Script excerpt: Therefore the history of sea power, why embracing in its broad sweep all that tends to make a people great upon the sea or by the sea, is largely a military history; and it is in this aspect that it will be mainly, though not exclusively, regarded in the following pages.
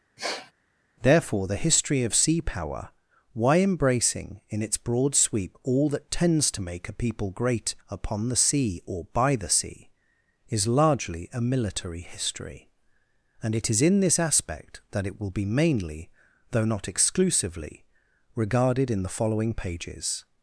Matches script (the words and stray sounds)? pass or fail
fail